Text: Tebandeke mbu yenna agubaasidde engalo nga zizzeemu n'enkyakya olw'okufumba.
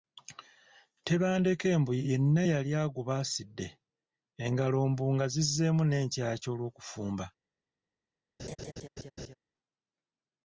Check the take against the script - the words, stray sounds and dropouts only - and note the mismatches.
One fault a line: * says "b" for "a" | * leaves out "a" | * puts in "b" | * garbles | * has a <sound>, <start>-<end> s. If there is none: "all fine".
* puts in "yali"
* puts in "mbu"
* has a laugh, 8.4-9.3 s